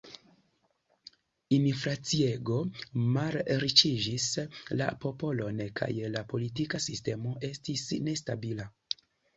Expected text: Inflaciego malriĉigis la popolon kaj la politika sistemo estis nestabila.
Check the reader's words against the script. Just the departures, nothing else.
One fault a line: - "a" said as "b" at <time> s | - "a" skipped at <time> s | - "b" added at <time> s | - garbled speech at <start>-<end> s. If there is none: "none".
none